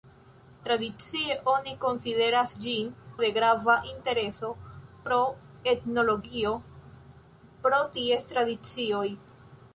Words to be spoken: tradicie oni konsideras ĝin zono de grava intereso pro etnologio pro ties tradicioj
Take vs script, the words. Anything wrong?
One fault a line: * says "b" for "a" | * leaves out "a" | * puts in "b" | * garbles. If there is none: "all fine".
* leaves out "zono"